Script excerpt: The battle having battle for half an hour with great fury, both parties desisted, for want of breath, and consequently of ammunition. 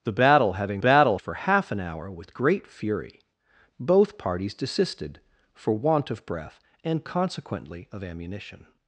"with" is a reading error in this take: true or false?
false